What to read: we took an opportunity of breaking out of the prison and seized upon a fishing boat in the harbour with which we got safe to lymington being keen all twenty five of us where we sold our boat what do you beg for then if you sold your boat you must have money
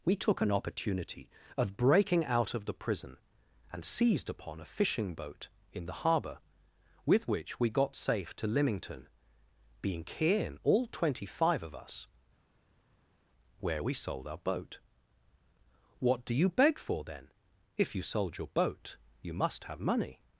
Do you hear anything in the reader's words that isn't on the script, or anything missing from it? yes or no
no